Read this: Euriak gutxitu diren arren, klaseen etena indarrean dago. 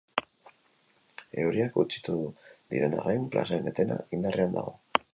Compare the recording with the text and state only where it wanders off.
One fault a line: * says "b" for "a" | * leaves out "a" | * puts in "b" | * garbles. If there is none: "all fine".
all fine